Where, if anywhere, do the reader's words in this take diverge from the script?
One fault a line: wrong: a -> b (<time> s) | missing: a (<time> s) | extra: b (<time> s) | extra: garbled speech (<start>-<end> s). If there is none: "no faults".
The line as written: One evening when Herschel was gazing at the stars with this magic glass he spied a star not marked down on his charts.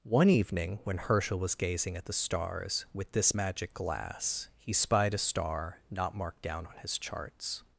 no faults